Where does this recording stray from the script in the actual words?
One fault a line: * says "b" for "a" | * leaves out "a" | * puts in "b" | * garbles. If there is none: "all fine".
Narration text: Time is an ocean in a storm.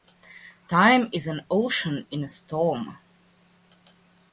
all fine